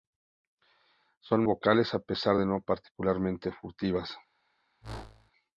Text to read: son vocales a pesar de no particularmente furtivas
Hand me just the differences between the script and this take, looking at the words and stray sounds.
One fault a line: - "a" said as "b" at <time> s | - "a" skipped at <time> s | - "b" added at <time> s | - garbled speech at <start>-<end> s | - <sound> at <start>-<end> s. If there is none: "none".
- whoosh at 4.8-5.3 s